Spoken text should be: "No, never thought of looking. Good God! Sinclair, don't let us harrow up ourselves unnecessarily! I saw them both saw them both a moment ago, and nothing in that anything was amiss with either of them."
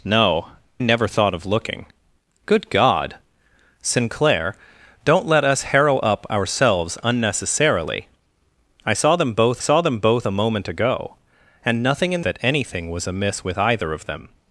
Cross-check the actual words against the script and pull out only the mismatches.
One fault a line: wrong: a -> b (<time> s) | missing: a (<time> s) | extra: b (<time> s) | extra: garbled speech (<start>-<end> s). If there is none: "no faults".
no faults